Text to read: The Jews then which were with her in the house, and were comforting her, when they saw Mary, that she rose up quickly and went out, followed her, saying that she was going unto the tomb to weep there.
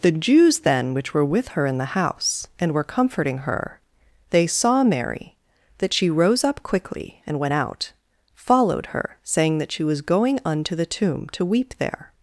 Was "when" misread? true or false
true